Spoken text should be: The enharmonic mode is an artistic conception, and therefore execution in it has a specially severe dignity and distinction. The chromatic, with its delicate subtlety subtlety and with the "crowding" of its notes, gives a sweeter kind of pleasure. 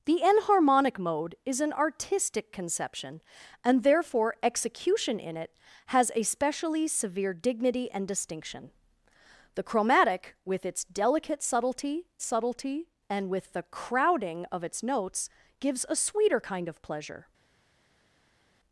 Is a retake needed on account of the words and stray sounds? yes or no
no